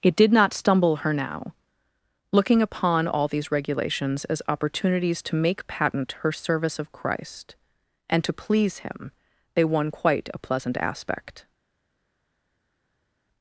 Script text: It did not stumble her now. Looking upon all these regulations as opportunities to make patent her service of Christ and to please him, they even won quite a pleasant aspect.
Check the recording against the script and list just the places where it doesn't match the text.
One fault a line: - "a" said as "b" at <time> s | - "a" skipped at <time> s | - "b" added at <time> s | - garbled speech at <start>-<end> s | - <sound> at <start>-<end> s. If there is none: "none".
- "even" skipped at 9.6 s